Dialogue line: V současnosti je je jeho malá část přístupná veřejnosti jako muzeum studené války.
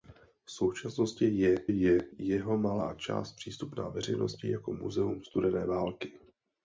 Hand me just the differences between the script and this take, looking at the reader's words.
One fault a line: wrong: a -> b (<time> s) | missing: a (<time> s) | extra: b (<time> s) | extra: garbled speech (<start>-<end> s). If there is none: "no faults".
no faults